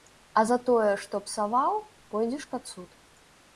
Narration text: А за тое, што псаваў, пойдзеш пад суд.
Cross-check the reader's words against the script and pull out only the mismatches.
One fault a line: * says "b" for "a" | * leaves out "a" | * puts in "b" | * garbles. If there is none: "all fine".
all fine